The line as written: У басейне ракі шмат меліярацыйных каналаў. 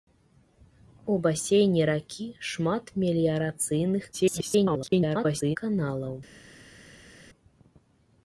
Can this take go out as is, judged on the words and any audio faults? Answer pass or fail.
fail